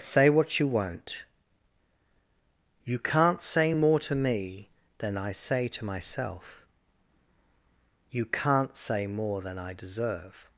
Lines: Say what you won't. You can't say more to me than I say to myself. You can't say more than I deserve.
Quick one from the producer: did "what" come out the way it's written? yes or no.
yes